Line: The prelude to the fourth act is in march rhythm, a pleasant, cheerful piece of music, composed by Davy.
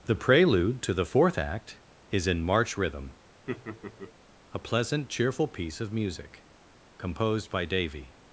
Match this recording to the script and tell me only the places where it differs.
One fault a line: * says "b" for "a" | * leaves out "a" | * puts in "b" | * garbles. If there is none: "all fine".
all fine